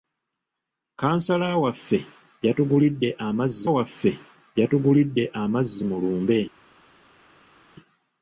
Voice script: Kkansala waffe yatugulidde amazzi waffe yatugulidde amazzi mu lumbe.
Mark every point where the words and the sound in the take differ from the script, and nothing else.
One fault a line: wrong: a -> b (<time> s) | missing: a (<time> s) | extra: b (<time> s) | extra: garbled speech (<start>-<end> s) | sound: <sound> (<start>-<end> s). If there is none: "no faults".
no faults